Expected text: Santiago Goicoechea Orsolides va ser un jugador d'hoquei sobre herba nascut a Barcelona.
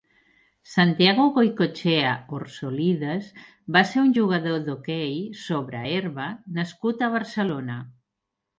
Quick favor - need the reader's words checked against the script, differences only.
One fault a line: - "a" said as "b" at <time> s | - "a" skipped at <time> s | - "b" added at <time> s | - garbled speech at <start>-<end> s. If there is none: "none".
none